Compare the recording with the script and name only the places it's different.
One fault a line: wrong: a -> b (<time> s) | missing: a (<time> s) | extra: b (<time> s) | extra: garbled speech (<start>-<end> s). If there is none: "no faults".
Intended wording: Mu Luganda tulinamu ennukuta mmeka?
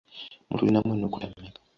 missing: Luganda (0.6 s)